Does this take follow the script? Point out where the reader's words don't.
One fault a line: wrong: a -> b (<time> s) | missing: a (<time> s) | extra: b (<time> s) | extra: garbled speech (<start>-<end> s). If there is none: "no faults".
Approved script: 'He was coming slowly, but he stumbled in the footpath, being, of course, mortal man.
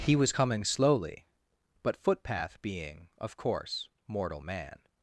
missing: he stumbled in the (2.0 s)